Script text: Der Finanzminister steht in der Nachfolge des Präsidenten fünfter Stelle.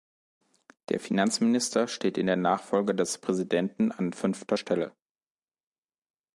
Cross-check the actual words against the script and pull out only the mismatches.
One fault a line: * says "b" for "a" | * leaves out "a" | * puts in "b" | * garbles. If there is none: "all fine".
* puts in "an"